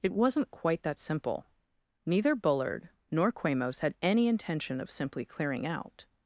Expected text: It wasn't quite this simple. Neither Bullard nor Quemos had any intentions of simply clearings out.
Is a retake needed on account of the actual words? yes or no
yes